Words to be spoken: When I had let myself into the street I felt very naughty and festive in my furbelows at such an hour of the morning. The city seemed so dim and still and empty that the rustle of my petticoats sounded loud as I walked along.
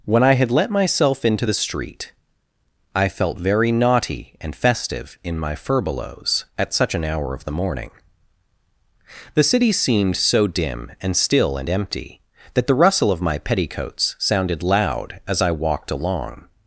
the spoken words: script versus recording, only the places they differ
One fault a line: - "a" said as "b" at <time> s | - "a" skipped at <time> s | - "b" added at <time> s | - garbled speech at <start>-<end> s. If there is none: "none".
none